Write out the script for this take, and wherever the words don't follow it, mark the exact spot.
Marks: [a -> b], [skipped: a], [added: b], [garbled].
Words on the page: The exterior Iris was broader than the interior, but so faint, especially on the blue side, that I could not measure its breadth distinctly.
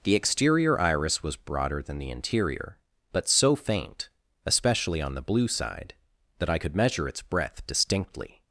The exterior Iris was broader than the interior, but so faint, especially on the blue side, that I could [skipped: not] measure its breadth distinctly.